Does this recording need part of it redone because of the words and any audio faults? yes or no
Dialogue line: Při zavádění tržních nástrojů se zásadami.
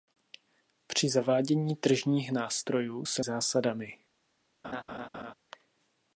yes